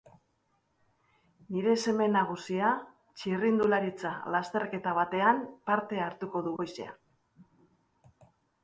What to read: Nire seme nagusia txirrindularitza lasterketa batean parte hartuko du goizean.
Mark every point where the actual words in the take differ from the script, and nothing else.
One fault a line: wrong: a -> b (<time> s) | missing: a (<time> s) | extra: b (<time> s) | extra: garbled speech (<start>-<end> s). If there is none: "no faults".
no faults